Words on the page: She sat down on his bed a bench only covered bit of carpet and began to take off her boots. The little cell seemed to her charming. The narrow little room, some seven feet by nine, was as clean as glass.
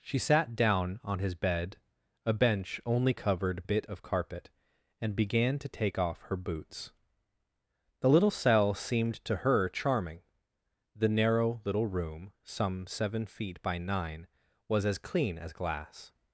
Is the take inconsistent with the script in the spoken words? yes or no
no